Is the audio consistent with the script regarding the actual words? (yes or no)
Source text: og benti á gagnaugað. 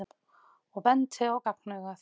yes